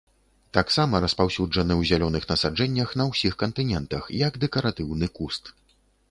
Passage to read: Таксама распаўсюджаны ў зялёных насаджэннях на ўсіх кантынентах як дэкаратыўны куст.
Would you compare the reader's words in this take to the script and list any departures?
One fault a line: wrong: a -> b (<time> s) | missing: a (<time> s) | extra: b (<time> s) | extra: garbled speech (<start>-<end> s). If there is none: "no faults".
no faults